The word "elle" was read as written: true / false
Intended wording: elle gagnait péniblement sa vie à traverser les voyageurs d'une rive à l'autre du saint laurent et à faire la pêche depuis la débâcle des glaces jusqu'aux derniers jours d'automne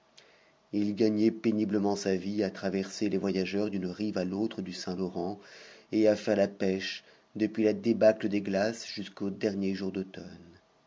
false